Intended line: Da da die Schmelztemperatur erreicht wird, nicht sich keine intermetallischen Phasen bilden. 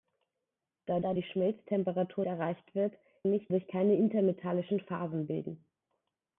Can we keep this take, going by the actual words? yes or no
yes